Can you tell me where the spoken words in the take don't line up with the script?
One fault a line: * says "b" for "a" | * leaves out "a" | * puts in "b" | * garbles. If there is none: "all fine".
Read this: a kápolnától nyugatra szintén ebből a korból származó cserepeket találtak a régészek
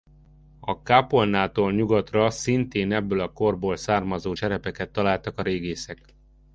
all fine